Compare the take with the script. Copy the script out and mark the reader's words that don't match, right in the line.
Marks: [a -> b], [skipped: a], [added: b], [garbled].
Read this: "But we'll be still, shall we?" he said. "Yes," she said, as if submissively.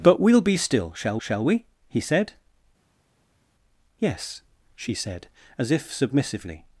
"But we'll be still, shall [added: shall] we?" he said. "Yes," she said, as if submissively.